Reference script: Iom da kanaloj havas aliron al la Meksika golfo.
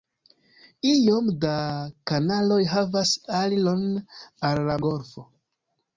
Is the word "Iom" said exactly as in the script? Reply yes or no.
yes